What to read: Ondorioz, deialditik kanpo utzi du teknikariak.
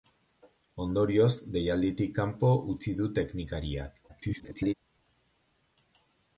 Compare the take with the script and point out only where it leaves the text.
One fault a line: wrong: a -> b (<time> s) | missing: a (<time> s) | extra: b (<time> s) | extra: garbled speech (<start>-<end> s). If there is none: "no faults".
extra: garbled speech (4.1-4.7 s)